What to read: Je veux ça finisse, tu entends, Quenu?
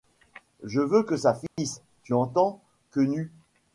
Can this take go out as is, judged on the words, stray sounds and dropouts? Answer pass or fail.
fail